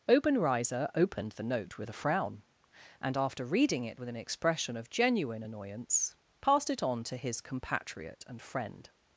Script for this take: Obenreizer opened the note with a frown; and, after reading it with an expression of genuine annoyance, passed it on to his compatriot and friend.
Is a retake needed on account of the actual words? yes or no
no